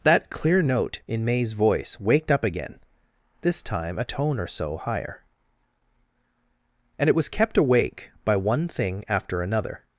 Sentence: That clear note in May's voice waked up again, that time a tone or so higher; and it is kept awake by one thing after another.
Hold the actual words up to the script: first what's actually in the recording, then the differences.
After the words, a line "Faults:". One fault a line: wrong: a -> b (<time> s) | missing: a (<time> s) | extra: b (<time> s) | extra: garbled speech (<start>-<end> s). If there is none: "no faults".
That clear note in May's voice waked up again, this time a tone or so higher; and it was kept awake by one thing after another.
Faults:
wrong: that -> this (3.4 s)
wrong: is -> was (7.2 s)